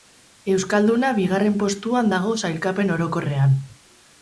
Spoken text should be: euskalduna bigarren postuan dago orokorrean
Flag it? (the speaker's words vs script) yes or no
yes